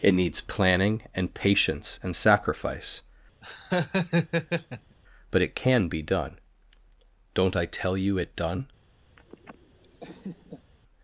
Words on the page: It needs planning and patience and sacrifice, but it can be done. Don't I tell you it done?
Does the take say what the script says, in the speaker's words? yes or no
yes